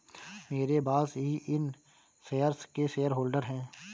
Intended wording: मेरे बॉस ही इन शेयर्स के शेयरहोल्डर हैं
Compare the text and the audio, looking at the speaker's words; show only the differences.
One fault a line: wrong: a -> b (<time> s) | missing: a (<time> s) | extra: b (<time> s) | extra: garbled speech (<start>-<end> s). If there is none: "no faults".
no faults